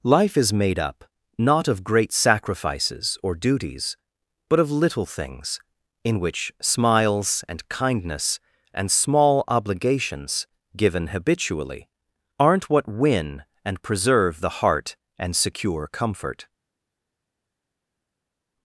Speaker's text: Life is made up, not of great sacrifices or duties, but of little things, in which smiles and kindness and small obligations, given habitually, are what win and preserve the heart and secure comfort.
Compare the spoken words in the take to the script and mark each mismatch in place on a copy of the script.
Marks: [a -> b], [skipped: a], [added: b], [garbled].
Life is made up, not of great sacrifices or duties, but of little things, in which smiles and kindness and small obligations, given habitually, [are -> aren't] what win and preserve the heart and secure comfort.